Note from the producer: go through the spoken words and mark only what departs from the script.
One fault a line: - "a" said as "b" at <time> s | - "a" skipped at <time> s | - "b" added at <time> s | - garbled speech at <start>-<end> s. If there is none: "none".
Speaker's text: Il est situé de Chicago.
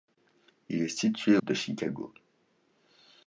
none